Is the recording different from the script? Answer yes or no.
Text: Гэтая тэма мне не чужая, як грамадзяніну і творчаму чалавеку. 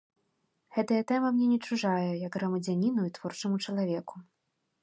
no